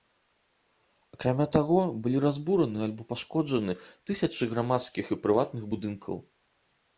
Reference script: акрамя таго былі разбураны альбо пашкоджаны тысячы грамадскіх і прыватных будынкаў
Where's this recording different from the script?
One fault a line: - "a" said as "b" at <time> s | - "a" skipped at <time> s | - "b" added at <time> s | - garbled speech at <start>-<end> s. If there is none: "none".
none